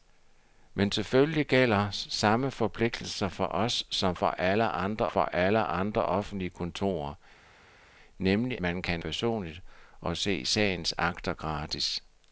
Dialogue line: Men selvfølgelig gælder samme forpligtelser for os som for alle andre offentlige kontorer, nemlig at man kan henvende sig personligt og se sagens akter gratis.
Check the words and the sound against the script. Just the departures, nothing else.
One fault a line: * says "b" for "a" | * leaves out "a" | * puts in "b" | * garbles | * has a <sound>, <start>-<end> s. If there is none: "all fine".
* puts in "for alle andre"
* leaves out "at"
* leaves out "henvende sig"